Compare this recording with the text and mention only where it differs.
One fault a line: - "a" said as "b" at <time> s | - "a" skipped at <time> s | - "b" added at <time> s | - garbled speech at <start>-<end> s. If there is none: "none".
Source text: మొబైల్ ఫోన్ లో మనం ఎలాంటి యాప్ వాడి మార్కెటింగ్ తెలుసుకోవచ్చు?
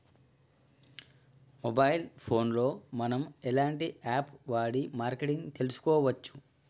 none